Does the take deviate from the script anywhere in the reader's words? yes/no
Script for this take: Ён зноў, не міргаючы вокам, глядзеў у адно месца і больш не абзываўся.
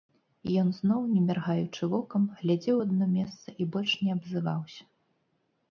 no